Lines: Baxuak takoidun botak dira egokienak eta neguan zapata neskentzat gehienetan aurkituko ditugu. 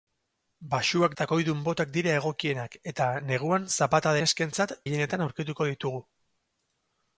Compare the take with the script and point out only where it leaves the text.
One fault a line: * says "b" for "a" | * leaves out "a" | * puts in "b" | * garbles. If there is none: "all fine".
all fine